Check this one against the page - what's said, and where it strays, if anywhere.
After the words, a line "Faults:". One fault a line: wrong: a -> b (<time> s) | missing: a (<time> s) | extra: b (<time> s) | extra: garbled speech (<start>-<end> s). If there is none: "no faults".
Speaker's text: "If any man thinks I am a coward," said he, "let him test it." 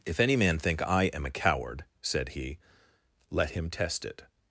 "If any man think I am a coward," said he, "let him test it."
Faults:
wrong: thinks -> think (0.6 s)